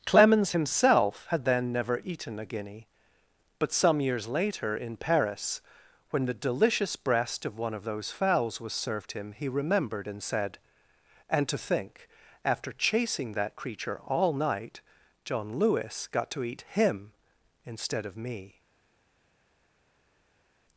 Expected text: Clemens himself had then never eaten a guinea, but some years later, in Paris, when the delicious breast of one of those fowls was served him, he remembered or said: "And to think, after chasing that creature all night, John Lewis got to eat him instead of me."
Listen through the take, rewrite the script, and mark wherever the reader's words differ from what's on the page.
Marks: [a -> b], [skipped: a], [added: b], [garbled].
Clemens himself had then never eaten a guinea, but some years later, in Paris, when the delicious breast of one of those fowls was served him, he remembered [or -> and] said: "And to think, after chasing that creature all night, John Lewis got to eat him instead of me."